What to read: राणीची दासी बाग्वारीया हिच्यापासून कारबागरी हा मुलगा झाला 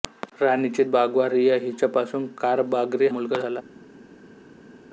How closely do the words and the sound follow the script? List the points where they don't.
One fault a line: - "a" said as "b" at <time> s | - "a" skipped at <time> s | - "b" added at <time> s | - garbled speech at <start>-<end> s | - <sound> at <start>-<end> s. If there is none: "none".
- "दासी" skipped at 0.8 s
- "हा" skipped at 3.1 s